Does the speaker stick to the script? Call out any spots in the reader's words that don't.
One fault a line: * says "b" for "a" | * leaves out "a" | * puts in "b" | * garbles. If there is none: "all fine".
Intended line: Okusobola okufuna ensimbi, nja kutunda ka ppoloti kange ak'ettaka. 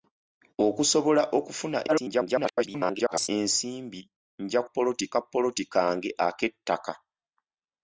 * garbles
* says "ppoloti" for "kutunda"